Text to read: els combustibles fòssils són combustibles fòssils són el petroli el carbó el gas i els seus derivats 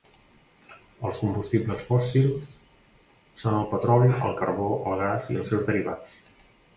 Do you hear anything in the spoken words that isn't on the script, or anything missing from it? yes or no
yes